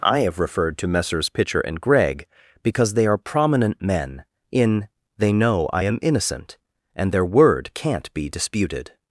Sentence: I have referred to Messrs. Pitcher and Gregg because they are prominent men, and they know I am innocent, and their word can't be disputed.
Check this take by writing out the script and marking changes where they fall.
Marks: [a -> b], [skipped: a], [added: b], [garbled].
I have referred to Messrs. Pitcher and Gregg because they are prominent men, [and -> in] they know I am innocent, and their word can't be disputed.